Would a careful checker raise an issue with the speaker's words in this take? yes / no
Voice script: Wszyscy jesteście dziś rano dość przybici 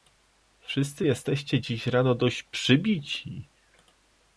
no